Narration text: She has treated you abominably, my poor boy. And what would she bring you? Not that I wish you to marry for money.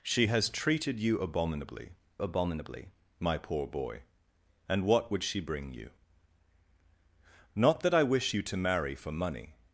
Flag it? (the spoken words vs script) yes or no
yes